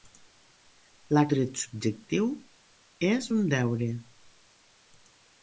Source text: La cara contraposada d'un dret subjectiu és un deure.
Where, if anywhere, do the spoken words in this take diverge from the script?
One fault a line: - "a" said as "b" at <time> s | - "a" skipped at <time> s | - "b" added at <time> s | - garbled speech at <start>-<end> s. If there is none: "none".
- "cara contraposada d'un" skipped at 1.2 s